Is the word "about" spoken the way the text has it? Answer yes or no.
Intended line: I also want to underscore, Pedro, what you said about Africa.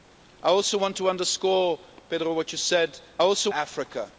no